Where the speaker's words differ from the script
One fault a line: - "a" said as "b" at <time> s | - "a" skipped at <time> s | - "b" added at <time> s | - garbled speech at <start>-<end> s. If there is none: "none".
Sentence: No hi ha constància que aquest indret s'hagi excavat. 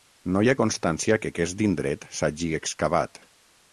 none